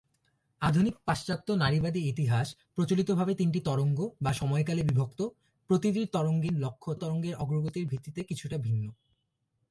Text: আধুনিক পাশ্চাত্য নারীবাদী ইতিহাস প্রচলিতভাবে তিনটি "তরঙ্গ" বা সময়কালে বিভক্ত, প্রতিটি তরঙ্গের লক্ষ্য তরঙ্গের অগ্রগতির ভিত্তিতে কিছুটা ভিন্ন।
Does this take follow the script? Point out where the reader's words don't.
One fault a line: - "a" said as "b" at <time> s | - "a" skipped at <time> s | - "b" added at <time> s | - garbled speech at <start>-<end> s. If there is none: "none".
none